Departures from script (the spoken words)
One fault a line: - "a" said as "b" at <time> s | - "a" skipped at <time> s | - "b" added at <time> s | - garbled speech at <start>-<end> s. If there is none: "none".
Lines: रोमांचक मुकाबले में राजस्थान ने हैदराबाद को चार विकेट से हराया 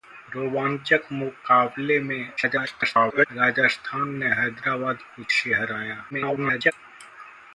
- garbled speech at 2.4-3.3 s
- "चार विकेट" skipped at 5.2 s
- garbled speech at 6.1-6.7 s